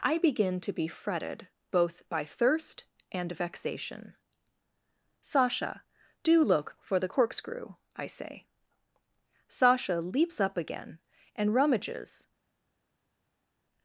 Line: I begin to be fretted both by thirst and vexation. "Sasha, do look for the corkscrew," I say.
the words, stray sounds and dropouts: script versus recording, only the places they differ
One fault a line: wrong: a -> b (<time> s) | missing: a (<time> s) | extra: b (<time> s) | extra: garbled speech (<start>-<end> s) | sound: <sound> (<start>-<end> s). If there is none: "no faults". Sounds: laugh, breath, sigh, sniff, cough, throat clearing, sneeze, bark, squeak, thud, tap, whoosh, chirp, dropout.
extra: Sasha leaps up again and rummages (9.5 s)